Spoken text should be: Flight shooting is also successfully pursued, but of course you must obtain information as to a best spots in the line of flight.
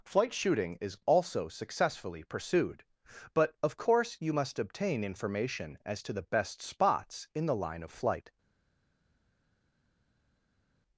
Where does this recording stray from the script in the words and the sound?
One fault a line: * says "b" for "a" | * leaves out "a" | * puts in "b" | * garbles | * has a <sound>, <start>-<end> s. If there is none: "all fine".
* says "the" for "a"